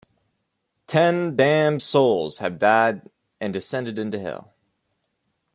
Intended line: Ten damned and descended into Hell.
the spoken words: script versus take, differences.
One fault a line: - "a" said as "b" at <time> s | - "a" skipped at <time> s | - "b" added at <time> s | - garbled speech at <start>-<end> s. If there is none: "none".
- "souls have died" added at 1.8 s